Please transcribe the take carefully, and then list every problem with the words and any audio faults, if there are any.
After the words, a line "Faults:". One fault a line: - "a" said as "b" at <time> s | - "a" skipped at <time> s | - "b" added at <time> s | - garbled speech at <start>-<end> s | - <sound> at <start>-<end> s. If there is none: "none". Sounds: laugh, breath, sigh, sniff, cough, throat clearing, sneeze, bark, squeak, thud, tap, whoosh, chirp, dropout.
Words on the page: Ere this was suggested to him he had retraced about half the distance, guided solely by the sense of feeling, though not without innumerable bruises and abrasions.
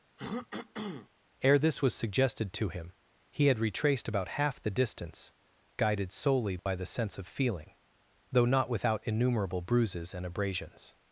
Ere this was suggested to him he had retraced about half the distance, guided solely by the sense of feeling, though not without innumerable bruises and abrasions.
Faults:
- throat clearing at 0.2-1.1 s
- dropout at 6.6-6.7 s